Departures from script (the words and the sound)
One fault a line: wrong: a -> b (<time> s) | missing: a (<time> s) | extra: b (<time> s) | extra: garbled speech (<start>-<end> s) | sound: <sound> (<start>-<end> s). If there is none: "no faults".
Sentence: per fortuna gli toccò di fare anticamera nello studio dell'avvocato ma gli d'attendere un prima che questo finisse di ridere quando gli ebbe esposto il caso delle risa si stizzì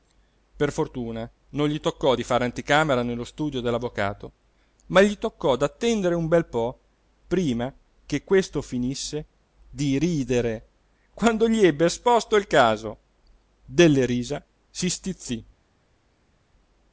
extra: non (1.5 s)
extra: toccò (5.2 s)
extra: bel po (6.3 s)